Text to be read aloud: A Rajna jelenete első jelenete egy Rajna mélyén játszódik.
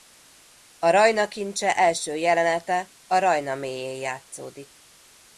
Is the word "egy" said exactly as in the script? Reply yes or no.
no